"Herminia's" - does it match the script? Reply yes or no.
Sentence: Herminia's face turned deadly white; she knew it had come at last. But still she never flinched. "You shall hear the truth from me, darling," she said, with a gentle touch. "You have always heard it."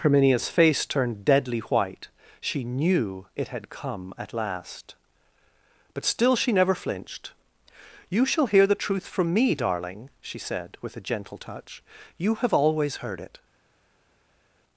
yes